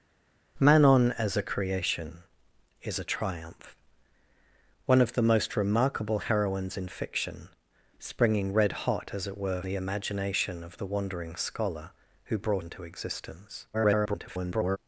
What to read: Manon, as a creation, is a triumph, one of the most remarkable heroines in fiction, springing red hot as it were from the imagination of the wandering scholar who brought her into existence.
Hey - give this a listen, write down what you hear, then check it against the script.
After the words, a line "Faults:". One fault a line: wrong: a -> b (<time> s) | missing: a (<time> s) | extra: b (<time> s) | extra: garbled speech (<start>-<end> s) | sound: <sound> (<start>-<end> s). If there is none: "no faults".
Manon, as a creation, is a triumph, one of the most remarkable heroines in fiction, springing red hot as it were the imagination of the wandering scholar who brought into existence. [garbled]
Faults:
missing: from (9.6 s)
missing: her (12.7 s)
extra: garbled speech (13.7-14.8 s)